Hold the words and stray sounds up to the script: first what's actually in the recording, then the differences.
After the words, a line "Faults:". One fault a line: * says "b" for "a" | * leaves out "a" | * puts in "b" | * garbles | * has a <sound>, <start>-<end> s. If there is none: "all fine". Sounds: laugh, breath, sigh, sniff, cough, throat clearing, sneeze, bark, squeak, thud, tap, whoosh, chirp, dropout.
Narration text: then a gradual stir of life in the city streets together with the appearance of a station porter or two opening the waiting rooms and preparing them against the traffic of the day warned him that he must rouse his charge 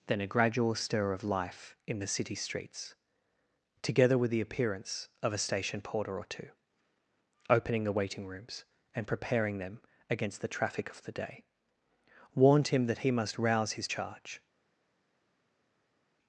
then a gradual stir of life in the city streets together with the appearance of a station porter or two opening the waiting rooms and preparing them against the traffic of the day warned him that he must rouse his charge
Faults:
all fine